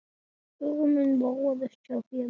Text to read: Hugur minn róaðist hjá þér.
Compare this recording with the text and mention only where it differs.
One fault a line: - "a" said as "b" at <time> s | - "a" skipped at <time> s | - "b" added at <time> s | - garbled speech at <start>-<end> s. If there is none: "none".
none